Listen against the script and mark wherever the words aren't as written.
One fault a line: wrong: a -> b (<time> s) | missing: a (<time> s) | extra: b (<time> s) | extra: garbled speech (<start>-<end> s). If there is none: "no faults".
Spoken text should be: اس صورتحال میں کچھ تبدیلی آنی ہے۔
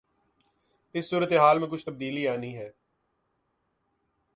no faults